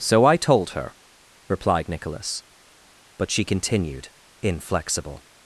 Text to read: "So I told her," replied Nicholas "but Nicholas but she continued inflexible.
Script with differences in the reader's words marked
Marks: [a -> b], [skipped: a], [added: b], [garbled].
"So I told her," replied Nicholas "but [skipped: Nicholas but] she continued inflexible.